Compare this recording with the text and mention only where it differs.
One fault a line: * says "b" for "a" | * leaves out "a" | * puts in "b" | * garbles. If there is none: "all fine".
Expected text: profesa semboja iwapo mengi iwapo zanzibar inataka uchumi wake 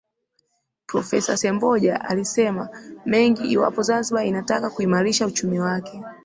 * says "alisema" for "iwapo"
* puts in "kuimarisha"